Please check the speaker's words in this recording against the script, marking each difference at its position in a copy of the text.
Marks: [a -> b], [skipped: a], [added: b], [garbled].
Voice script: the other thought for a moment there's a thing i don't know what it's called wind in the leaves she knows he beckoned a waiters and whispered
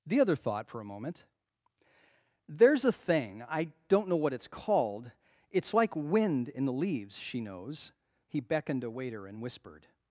the other thought for a moment there's a thing i don't know what it's called [added: it's like] wind in the leaves she knows he beckoned a [waiters -> waiter] and whispered